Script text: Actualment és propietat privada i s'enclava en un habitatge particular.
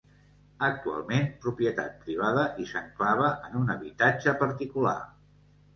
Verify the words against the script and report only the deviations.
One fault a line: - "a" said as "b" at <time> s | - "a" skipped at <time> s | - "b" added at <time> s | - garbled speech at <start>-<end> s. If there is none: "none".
- "és" skipped at 1.2 s